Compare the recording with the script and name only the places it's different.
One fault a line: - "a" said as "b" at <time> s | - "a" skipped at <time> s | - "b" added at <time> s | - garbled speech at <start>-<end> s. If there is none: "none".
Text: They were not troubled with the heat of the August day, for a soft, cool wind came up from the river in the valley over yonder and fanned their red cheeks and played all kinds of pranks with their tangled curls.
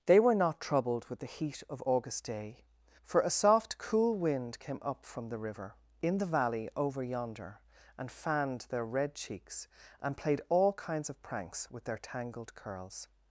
- "the" skipped at 1.8 s